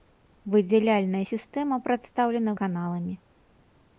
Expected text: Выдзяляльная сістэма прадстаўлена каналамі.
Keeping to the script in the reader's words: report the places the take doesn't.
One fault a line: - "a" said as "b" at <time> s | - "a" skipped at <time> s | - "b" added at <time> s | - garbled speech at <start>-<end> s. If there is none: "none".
none